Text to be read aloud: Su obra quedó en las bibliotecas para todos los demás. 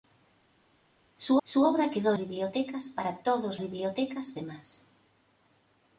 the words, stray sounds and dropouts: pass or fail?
fail